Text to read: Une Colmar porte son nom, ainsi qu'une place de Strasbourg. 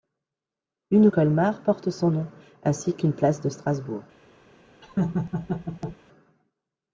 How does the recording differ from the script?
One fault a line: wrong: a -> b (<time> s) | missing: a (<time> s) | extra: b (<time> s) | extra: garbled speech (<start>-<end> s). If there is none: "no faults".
no faults